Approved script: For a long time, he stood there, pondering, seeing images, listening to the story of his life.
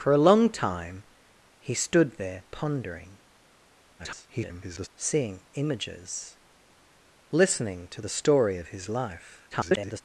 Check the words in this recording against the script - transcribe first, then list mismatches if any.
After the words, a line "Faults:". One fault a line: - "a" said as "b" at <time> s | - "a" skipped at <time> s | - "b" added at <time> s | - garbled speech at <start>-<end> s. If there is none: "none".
For a long time, he stood there, pondering, [garbled] seeing images, listening to the story of his life. [garbled]
Faults:
- garbled speech at 4.0-4.9 s
- garbled speech at 9.5-10.0 s